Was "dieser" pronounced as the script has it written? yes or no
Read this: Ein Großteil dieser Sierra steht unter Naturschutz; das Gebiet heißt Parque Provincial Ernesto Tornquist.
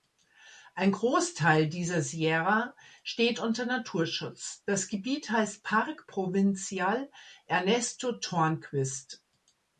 yes